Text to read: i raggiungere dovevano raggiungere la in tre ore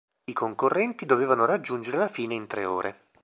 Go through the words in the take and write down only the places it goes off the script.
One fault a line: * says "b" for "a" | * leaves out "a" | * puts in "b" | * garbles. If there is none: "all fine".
* says "concorrenti" for "raggiungere"
* puts in "fine"